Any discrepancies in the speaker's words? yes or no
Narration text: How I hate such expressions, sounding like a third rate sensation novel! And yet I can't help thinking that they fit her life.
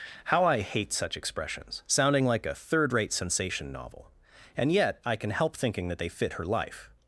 yes